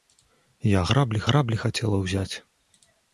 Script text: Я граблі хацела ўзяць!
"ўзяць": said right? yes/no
yes